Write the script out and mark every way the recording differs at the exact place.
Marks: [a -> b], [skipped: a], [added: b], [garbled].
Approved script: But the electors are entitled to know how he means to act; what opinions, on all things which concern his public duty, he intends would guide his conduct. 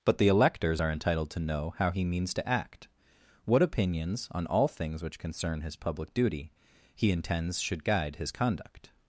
But the electors are entitled to know how he means to act; what opinions, on all things which concern his public duty, he intends [would -> should] guide his conduct.